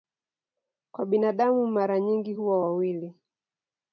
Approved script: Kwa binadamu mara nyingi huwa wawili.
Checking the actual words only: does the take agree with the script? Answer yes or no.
yes